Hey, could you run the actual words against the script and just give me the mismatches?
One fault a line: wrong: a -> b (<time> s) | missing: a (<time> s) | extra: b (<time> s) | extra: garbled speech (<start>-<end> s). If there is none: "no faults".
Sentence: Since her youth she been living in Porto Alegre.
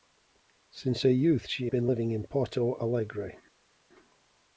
no faults